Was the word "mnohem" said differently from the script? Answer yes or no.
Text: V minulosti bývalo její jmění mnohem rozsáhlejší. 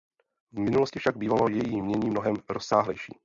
no